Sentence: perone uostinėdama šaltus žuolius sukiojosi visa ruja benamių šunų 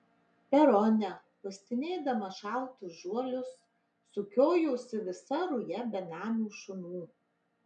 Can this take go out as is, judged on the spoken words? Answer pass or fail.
pass